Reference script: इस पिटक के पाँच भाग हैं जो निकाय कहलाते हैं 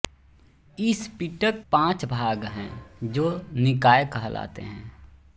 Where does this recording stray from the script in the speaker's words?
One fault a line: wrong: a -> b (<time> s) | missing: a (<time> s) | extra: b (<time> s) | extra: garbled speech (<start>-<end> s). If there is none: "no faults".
missing: के (1.6 s)